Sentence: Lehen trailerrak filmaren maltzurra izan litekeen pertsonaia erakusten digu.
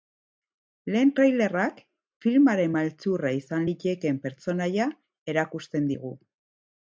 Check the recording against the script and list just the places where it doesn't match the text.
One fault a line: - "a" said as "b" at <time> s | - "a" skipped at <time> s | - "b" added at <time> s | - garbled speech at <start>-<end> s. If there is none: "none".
none